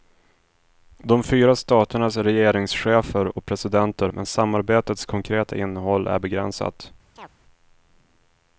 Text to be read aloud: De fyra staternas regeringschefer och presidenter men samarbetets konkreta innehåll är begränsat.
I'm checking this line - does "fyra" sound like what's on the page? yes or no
yes